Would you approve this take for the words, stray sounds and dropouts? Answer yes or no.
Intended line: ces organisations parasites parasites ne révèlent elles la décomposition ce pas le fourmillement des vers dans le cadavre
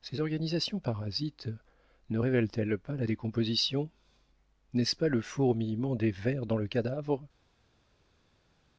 no